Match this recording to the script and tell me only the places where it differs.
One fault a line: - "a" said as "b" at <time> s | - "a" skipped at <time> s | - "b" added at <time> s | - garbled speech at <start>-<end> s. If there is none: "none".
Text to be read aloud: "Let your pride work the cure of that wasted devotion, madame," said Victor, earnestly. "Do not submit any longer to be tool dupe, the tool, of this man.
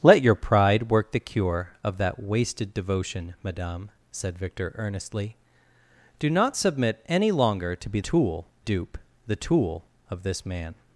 none